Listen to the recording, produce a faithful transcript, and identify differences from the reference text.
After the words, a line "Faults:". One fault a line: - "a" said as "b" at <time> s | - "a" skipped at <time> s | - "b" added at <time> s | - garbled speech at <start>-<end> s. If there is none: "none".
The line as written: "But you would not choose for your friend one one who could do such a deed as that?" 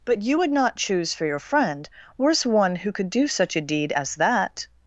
"But you would not choose for your friend worse one who could do such a deed as that?"
Faults:
- "one" said as "worse" at 2.2 s